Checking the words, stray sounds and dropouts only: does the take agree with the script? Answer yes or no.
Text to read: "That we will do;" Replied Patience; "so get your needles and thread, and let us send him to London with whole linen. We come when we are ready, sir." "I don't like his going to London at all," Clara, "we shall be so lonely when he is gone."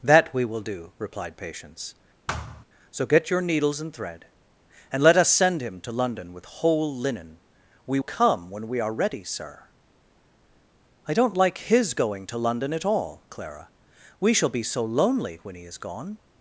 no